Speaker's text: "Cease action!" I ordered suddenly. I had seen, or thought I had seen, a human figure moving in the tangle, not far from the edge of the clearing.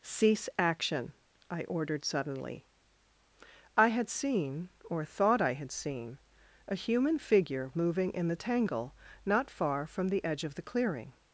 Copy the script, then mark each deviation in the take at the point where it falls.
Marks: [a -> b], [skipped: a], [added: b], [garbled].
"Cease action!" I ordered suddenly. I had seen, or thought I had seen, a human figure moving in the tangle, not far from the edge of the clearing.